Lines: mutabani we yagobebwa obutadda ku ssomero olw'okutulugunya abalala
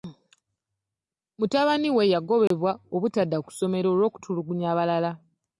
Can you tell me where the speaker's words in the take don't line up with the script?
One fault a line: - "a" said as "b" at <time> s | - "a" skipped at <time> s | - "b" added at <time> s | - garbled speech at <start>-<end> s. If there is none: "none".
none